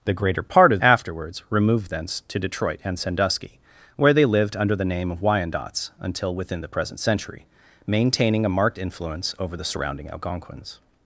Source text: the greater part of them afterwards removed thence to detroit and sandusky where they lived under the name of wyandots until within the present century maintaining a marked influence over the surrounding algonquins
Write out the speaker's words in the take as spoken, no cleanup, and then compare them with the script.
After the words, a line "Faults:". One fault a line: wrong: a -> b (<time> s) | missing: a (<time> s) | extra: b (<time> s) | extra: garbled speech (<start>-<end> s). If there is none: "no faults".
the greater part of afterwards removed thence to detroit and sandusky where they lived under the name of wyandots until within the present century maintaining a marked influence over the surrounding algonquins
Faults:
missing: them (0.8 s)